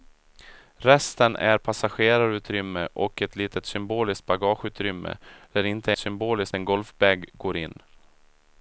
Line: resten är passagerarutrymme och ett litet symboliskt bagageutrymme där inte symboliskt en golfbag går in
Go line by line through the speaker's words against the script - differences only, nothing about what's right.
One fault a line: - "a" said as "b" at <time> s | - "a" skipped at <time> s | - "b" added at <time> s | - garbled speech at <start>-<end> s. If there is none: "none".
none